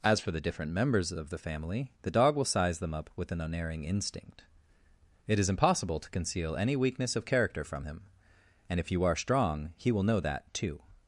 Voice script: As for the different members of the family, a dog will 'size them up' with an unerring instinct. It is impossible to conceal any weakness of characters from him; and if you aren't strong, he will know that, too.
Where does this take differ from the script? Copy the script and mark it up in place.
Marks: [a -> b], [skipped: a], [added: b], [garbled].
As for the different members of the family, [a -> the] dog will 'size them up' with an unerring instinct. It is impossible to conceal any weakness of [characters -> character] from him; and if you [aren't -> are] strong, he will know that, too.